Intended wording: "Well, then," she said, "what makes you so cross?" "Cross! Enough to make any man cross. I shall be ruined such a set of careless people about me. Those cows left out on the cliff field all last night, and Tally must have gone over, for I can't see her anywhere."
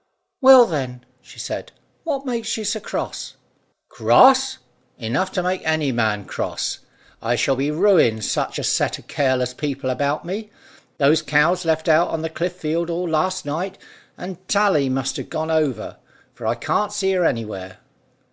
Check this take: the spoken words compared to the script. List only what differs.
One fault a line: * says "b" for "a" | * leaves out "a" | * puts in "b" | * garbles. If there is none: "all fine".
all fine